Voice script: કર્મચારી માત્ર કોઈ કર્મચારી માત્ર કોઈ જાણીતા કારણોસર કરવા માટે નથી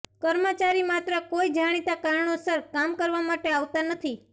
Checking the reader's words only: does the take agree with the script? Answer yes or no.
no